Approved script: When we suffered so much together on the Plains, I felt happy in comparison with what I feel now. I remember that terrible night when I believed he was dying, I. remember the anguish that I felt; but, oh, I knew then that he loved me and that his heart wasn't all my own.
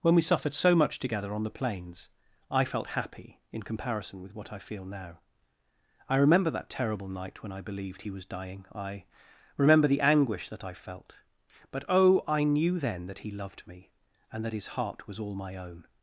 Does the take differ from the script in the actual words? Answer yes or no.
yes